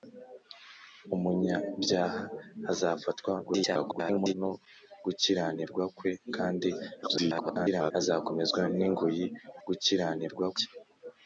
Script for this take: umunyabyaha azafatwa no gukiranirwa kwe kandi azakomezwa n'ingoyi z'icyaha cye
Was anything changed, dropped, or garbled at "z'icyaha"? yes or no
yes